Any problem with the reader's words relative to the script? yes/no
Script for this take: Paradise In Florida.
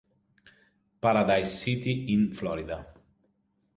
yes